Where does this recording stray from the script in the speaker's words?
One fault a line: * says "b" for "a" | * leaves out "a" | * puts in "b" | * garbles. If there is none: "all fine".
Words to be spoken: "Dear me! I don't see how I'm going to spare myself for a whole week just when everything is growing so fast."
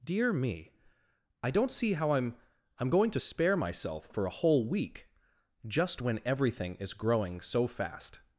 * puts in "I'm"